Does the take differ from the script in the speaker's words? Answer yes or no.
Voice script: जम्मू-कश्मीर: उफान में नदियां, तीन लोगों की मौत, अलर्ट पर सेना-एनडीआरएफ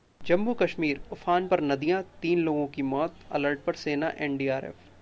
yes